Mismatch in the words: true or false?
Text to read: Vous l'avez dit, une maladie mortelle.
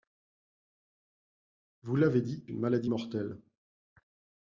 false